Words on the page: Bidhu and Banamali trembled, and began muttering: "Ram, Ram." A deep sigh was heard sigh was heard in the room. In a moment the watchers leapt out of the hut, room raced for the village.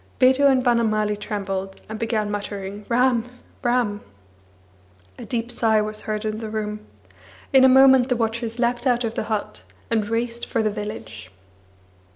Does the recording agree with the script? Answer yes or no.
no